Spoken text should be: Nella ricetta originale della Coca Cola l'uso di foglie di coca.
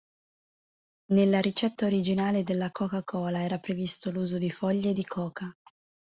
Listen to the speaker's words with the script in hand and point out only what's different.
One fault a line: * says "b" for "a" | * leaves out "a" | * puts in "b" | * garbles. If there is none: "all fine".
* puts in "era previsto"